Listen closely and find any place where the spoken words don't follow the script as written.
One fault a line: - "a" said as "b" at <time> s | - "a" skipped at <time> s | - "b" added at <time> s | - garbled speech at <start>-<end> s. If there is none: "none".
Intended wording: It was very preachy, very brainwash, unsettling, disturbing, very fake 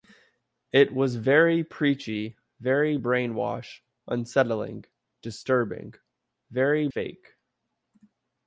none